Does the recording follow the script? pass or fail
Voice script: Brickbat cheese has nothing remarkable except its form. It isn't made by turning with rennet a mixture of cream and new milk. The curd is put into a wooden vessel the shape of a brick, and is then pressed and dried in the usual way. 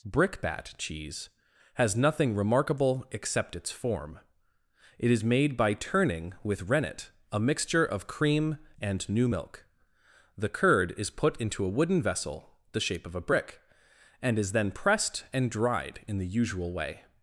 fail